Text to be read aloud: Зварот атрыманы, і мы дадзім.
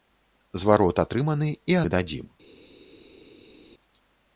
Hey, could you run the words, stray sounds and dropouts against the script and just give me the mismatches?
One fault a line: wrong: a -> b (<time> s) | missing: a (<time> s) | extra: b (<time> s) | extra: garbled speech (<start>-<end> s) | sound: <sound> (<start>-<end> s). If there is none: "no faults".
no faults